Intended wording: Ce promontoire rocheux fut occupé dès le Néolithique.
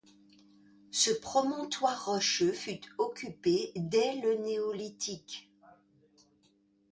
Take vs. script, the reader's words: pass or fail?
pass